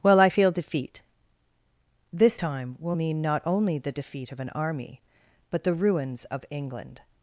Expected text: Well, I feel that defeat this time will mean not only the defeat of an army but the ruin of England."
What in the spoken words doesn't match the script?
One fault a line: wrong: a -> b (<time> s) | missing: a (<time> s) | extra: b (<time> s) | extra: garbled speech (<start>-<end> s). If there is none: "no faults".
missing: that (0.5 s)
wrong: ruin -> ruins (5.7 s)